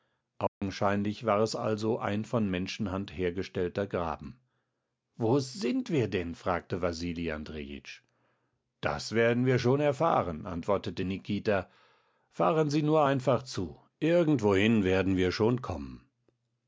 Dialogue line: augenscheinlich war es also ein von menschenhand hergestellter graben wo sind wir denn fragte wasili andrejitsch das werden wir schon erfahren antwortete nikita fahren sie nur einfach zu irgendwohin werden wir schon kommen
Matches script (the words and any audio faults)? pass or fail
fail